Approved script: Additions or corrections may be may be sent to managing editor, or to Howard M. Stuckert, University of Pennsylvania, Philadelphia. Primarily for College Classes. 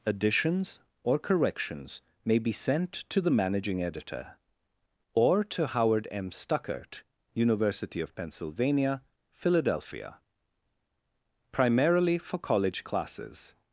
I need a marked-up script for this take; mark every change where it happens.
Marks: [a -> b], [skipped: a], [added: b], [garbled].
Additions or corrections may be [skipped: may be] sent to [added: the] managing editor, or to Howard M. Stuckert, University of Pennsylvania, Philadelphia. Primarily for College Classes.